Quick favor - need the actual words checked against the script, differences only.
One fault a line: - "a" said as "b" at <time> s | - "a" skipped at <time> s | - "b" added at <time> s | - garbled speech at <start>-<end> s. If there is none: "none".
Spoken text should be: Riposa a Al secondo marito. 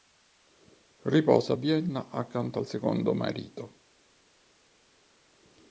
- "Vienna accanto" added at 1.5 s